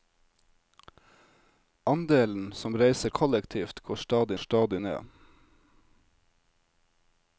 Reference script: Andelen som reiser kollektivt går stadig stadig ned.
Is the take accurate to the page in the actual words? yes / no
yes